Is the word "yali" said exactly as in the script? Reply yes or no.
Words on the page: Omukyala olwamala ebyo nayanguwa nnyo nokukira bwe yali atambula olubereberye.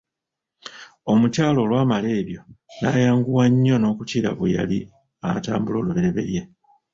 yes